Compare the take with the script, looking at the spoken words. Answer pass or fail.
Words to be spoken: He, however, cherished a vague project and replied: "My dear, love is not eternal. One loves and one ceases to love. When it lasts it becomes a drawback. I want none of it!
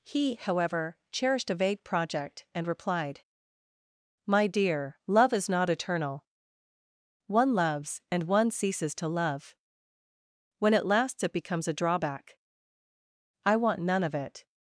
pass